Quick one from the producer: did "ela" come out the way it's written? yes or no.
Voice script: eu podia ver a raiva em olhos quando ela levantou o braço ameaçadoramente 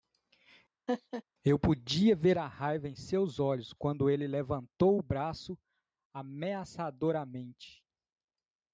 no